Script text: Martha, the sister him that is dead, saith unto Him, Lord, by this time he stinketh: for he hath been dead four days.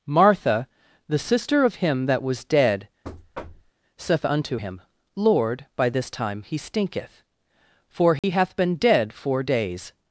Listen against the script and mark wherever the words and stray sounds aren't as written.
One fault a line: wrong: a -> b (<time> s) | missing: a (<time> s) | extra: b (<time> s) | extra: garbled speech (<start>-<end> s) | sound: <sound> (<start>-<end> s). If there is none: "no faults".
extra: of (1.6 s)
wrong: is -> was (2.2 s)
sound: thud (3.0-3.7 s)
sound: dropout (8.2-8.2 s)